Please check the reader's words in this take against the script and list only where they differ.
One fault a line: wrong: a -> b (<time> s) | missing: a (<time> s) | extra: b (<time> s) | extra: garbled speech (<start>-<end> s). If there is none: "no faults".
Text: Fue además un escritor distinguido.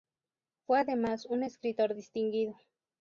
no faults